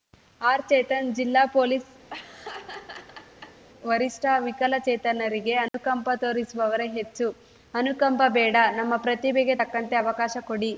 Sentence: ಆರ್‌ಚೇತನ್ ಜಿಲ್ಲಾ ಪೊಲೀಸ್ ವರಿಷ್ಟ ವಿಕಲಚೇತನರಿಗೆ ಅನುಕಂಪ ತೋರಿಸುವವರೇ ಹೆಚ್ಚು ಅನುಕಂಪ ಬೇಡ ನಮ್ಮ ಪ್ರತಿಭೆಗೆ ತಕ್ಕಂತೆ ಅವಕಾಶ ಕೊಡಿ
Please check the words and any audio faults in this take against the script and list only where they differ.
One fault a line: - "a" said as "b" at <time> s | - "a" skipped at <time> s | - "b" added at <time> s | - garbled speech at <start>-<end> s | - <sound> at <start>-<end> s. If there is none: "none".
- laugh at 2.1-3.6 s
- dropout at 5.7-5.7 s